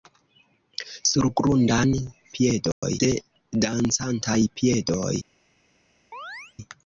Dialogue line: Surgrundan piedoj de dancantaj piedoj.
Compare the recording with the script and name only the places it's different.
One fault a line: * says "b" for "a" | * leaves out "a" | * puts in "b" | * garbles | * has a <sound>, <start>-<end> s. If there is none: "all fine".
* has a dropout, 2.7-2.8 s
* has a chirp, 6.1-6.5 s